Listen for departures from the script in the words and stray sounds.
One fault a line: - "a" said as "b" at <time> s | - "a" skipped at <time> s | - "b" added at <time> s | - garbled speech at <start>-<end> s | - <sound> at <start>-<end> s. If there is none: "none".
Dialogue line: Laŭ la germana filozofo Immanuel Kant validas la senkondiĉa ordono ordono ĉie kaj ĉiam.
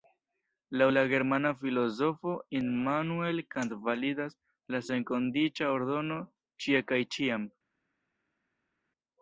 - "ordono" skipped at 6.2 s